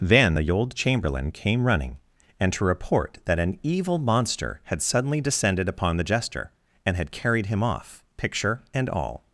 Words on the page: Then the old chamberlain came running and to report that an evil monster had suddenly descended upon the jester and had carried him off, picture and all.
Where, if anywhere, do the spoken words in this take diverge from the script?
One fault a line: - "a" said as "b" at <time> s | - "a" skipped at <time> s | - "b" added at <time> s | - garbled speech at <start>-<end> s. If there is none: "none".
none